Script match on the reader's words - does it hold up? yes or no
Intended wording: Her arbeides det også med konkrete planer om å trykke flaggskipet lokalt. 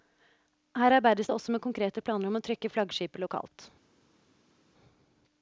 yes